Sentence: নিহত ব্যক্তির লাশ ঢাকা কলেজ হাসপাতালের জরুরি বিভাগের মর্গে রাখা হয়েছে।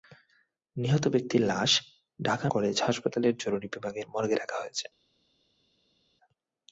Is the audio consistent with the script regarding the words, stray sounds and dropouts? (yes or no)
yes